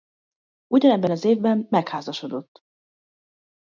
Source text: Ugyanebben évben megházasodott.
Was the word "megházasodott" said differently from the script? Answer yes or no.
no